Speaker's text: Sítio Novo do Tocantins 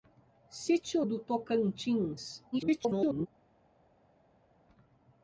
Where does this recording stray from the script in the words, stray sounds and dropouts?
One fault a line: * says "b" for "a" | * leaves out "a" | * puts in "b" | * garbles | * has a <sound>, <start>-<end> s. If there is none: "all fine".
* leaves out "Novo"
* garbles